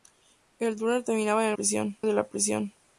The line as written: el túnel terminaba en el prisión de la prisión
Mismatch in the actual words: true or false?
false